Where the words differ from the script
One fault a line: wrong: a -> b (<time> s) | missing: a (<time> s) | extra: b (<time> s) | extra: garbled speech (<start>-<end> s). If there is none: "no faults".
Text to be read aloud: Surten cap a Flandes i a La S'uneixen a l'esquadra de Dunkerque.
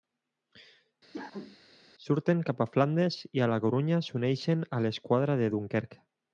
extra: Corunya (3.6 s)